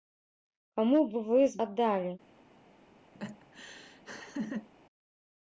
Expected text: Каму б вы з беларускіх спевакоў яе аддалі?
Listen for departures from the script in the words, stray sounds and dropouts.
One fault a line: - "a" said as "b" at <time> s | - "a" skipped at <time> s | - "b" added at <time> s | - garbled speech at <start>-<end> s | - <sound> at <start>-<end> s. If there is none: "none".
- "беларускіх спевакоў яе" skipped at 1.6 s
- laugh at 3.2-4.7 s